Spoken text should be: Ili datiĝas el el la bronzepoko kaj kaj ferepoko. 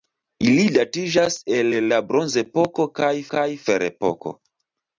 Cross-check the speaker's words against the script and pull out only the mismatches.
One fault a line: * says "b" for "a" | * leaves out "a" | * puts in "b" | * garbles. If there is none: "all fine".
all fine